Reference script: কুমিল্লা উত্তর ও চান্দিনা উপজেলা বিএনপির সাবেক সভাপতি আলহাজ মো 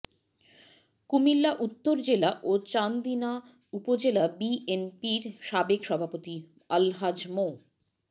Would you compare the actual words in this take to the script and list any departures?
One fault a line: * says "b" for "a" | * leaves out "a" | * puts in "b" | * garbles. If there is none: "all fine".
* puts in "জেলা"